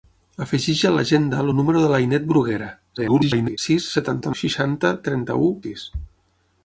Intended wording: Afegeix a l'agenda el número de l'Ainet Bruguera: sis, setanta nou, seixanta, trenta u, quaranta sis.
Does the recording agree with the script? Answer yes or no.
no